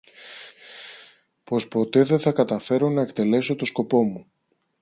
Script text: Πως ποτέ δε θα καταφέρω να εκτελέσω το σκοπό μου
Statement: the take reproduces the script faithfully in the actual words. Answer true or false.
true